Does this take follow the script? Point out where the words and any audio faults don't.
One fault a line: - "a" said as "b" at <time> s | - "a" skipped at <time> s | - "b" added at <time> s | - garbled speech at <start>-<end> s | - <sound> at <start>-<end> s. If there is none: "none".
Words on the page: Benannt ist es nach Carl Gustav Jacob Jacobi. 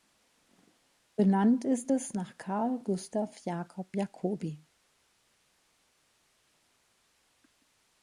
none